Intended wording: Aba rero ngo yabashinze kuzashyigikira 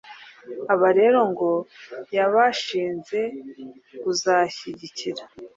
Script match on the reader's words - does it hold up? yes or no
yes